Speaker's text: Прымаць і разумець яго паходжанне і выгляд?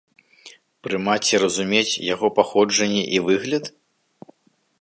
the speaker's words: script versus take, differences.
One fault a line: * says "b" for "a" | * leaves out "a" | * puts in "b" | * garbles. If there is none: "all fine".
all fine